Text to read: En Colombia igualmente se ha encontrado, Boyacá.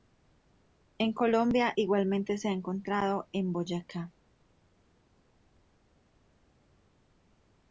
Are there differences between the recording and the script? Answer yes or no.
yes